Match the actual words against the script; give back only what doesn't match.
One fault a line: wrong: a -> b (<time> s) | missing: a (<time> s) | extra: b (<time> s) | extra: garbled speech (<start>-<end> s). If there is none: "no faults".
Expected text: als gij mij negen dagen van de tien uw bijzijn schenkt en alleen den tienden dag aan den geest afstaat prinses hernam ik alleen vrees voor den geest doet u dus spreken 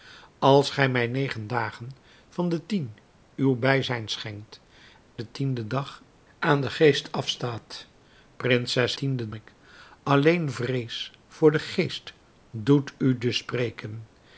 missing: en alleen (4.6 s)
wrong: hernam -> tienden (8.9 s)